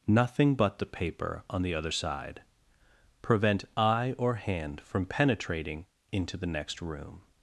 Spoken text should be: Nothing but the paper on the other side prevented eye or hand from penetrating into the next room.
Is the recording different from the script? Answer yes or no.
yes